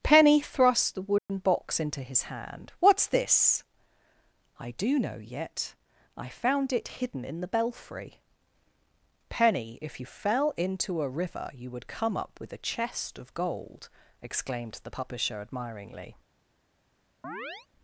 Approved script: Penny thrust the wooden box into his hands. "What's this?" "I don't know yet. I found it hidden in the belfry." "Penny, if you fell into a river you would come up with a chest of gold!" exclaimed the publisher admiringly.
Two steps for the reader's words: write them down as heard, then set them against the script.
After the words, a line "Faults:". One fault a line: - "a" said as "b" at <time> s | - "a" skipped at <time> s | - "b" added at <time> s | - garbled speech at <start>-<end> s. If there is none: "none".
Penny thrust the wooden box into his hand. "What's this?" "I do know yet. I found it hidden in the belfry." "Penny, if you fell into a river you would come up with a chest of gold!" exclaimed the publisher admiringly.
Faults:
- "hands" said as "hand" at 2.2 s
- "don't" said as "do" at 4.7 s